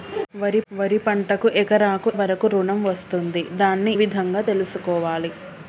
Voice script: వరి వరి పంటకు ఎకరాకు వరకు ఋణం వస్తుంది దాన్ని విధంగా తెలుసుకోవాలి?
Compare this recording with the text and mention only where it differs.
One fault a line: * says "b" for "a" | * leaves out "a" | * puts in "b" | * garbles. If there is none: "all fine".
all fine